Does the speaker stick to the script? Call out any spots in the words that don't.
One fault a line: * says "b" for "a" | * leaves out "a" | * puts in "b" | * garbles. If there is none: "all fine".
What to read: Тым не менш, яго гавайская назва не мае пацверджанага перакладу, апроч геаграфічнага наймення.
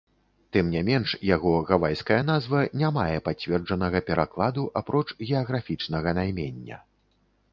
all fine